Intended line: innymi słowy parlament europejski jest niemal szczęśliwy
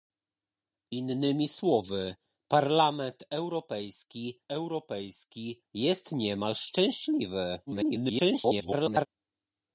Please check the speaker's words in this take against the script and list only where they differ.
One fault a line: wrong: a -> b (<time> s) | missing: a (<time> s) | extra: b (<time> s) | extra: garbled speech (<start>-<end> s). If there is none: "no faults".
extra: europejski (4.5 s)
extra: garbled speech (7.7-9.1 s)